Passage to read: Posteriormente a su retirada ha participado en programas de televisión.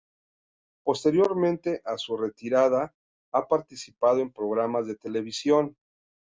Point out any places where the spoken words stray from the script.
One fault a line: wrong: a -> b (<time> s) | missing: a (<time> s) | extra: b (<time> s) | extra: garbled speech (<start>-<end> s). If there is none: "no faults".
no faults